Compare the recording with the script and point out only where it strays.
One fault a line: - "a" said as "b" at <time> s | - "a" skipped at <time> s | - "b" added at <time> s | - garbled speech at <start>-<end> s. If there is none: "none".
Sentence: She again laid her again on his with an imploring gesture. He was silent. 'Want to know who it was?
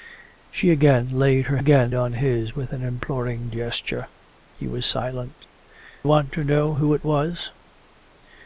none